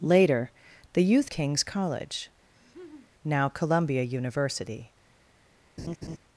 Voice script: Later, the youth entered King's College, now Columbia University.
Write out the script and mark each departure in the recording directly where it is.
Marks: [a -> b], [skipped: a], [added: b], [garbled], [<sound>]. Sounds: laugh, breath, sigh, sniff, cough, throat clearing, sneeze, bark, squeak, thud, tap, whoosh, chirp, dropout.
Later, the youth [skipped: entered] King's College, [laugh] now Columbia University. [laugh]